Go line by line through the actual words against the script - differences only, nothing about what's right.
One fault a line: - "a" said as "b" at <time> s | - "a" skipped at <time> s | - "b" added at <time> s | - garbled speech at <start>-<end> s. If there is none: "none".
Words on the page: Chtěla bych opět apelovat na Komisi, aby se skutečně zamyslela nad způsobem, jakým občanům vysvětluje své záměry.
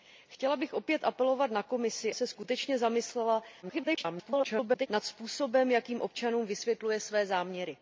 - "aby" skipped at 2.1 s
- garbled speech at 3.6-4.9 s